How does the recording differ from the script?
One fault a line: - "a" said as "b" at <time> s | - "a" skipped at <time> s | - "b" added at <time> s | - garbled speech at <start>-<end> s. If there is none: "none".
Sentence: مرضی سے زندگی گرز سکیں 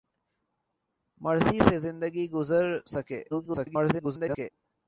- garbled speech at 3.3-4.5 s